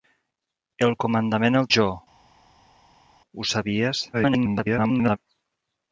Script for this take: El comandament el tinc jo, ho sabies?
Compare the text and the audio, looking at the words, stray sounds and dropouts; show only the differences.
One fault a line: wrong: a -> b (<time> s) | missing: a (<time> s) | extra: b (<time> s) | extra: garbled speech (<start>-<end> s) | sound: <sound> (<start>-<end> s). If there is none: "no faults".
missing: tinc (1.7 s)
extra: garbled speech (4.1-5.2 s)